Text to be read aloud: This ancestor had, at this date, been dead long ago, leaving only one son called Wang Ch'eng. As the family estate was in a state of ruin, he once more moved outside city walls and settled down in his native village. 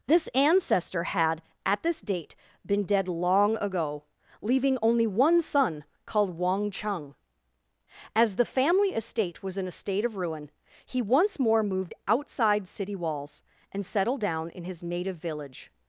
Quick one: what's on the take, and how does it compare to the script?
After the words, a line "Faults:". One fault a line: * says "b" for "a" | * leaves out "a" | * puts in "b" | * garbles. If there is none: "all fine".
This ancestor had, at this date, been dead long ago, leaving only one son called Wang Ch'eng. As the family estate was in a state of ruin, he once more moved outside city walls and settled down in his native village.
Faults:
all fine